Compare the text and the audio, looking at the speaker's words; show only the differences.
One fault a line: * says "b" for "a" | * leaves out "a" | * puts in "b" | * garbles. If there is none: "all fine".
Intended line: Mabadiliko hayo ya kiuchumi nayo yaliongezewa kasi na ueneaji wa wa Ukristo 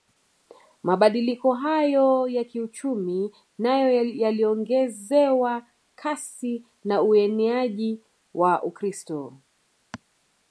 * leaves out "wa"